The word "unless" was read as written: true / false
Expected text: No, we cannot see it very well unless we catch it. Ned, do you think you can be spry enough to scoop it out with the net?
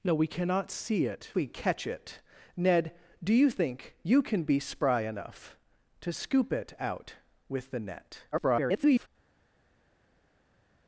false